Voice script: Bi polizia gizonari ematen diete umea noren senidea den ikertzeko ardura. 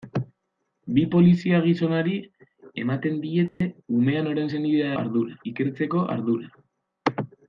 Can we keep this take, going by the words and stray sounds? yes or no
no